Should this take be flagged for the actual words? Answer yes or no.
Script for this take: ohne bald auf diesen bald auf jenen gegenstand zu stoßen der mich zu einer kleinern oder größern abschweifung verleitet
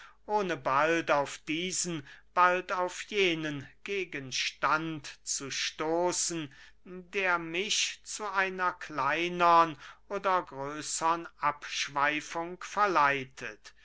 no